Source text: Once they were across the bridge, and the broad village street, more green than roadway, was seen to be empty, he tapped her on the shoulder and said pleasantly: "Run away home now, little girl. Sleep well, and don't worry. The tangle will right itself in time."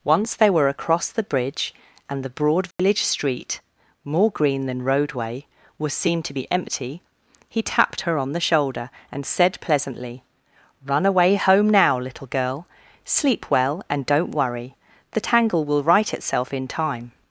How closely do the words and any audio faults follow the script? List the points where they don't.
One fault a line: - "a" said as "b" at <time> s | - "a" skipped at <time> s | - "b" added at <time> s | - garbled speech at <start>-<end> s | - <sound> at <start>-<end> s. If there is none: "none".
- dropout at 2.7-2.8 s